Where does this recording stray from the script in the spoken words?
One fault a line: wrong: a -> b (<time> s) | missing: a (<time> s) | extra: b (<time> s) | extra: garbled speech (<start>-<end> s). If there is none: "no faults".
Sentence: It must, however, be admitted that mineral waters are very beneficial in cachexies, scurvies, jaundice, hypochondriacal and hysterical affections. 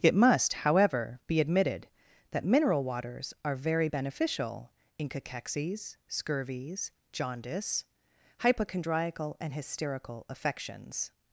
no faults